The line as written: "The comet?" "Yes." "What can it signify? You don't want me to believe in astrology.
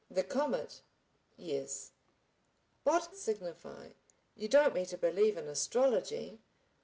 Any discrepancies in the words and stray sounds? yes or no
yes